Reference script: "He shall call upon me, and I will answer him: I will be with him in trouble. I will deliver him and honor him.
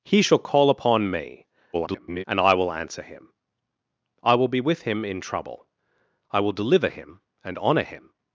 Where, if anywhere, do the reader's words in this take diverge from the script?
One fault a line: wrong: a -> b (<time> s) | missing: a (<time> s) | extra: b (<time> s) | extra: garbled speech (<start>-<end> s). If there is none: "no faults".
extra: garbled speech (1.7-2.2 s)